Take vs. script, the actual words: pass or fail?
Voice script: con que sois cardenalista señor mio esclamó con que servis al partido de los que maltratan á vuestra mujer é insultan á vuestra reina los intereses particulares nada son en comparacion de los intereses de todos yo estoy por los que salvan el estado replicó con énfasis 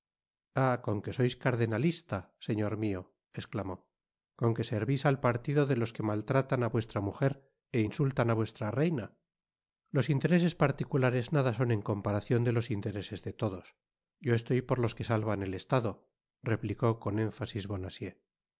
pass